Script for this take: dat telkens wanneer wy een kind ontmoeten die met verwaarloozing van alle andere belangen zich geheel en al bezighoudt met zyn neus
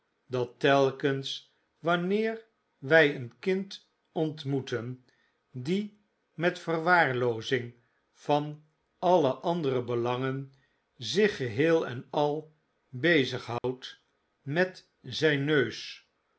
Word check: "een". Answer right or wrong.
right